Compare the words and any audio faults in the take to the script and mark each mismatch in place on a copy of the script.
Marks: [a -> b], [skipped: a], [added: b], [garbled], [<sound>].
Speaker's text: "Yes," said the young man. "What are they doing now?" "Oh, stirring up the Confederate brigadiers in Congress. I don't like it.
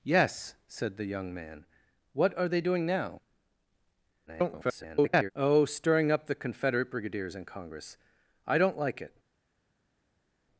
"Yes," said the young man. "What are they doing now?" [garbled] "Oh, stirring up the Confederate brigadiers in Congress. I don't like it.